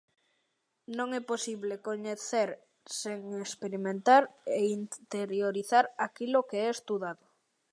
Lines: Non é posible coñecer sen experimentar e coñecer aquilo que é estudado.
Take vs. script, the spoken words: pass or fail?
fail